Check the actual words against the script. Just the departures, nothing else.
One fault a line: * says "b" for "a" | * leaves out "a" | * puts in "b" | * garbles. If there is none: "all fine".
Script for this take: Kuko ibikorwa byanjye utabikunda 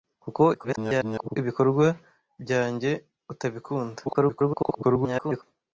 * garbles
* garbles